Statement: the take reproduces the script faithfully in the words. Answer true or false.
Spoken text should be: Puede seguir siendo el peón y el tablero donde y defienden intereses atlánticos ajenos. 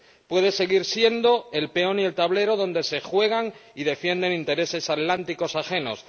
false